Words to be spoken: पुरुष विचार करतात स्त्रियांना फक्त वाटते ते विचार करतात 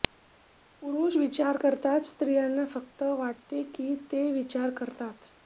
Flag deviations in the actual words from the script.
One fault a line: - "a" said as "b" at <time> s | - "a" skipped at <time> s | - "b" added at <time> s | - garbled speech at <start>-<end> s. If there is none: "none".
- "की" added at 3.7 s